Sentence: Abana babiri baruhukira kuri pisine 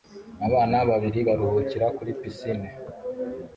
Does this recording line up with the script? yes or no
yes